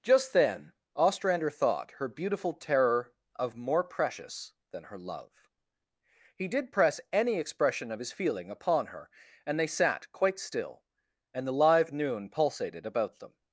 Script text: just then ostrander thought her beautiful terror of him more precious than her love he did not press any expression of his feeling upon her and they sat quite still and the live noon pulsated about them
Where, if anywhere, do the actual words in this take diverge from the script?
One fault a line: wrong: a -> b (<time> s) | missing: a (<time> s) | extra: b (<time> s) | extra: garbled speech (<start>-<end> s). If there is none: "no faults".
missing: him (3.6 s)
missing: not (6.7 s)